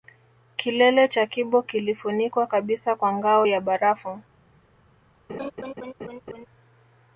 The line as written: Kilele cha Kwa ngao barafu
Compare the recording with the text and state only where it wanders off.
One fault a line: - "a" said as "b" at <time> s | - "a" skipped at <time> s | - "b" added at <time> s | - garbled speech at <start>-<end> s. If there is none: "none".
- "Kibo kilifunikwa kabisa" added at 1.2 s
- "ya" added at 3.4 s